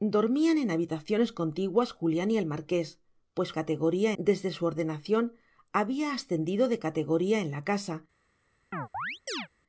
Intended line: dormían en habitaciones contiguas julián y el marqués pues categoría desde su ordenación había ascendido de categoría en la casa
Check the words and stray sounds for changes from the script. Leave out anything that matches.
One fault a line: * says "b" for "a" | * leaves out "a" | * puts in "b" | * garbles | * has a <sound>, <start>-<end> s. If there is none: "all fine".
* has a chirp, 8.7-9.5 s